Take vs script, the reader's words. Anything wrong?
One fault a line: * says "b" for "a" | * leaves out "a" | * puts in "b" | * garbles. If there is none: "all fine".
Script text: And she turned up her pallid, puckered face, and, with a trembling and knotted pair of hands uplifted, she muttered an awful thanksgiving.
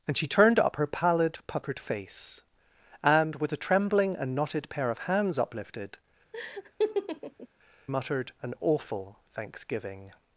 * leaves out "she"